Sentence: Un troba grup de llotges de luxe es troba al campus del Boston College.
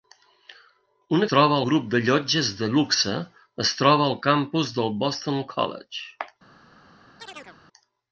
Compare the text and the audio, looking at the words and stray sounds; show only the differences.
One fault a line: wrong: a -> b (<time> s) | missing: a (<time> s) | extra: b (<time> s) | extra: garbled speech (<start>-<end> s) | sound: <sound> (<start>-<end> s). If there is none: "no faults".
sound: chirp (7.2-7.6 s)